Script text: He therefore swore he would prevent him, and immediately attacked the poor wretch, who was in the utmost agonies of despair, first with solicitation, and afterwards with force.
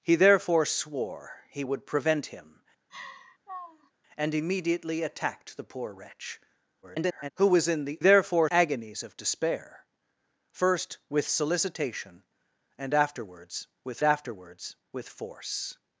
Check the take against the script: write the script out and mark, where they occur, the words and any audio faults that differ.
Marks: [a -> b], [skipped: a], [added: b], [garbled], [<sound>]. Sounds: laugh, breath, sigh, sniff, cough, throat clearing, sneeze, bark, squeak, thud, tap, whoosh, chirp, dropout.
He therefore swore he would prevent him, [laugh] and immediately attacked the poor wretch, [garbled] who was in the [utmost -> therefore] agonies of despair, first with solicitation, and afterwards with [added: afterwards with] force.